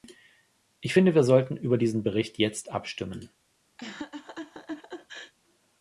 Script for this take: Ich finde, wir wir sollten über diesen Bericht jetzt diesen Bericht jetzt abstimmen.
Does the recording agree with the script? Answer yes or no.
no